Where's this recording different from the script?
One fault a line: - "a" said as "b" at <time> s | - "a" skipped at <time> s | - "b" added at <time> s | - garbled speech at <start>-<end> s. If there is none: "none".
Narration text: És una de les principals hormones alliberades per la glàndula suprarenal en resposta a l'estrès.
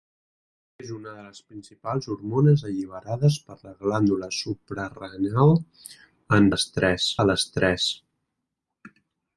- "resposta" said as "l'estrès" at 6.5 s